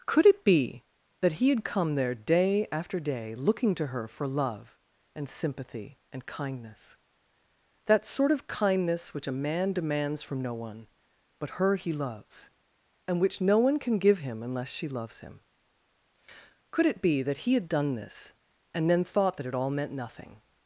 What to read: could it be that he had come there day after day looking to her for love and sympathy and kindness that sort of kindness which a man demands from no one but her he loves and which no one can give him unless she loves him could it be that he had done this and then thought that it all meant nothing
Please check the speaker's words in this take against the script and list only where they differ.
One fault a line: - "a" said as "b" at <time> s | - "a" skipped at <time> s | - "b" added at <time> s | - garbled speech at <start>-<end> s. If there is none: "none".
none